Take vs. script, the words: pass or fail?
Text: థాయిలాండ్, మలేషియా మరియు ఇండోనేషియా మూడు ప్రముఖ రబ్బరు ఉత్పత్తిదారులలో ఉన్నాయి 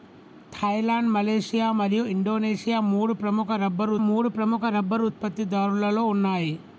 fail